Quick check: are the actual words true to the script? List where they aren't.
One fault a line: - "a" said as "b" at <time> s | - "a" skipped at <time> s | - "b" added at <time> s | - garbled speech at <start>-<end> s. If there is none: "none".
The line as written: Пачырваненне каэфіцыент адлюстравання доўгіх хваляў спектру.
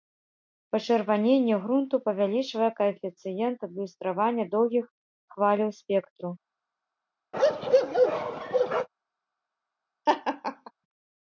- "грунту павялічвае" added at 1.6 s